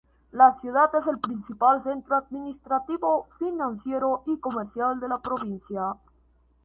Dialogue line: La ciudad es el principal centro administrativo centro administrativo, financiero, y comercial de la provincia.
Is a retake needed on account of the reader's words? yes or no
yes